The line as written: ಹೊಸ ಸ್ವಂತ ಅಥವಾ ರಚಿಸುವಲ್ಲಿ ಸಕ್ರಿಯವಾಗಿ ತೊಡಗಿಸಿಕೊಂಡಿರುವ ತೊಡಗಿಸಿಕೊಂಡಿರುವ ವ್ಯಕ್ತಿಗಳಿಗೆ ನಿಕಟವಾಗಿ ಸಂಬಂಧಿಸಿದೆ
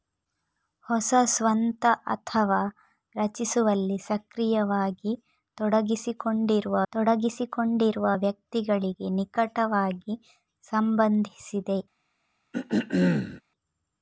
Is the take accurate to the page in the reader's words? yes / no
yes